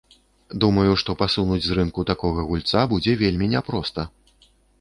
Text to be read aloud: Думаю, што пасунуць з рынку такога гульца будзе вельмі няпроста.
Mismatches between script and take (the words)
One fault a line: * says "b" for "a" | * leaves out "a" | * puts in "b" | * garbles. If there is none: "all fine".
all fine